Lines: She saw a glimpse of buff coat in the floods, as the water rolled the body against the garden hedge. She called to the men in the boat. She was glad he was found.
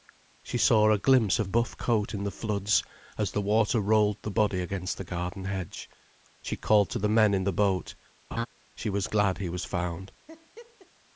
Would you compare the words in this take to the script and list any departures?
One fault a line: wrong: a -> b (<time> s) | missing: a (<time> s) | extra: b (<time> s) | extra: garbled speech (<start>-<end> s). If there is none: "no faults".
no faults